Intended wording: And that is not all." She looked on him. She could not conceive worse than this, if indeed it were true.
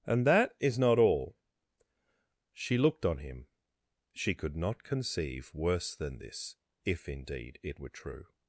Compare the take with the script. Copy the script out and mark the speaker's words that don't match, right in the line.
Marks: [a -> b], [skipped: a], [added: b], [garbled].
And that is not all." She looked on him. She could not conceive worse than this, if indeed it were true.